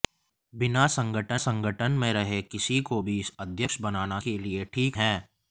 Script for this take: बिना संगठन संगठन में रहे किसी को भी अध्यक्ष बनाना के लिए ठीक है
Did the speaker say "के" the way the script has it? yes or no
yes